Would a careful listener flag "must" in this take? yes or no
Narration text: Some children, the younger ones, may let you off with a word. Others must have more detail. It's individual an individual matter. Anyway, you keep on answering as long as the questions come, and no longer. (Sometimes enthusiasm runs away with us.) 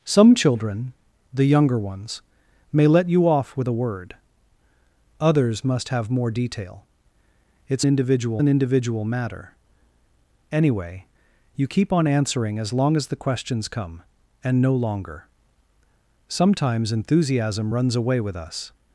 no